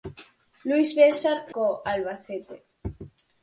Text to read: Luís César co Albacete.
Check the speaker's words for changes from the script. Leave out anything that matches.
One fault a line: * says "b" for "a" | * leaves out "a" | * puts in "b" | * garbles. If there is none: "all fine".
all fine